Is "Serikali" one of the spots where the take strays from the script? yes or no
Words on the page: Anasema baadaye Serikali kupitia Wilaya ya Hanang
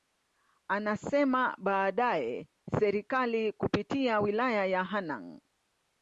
no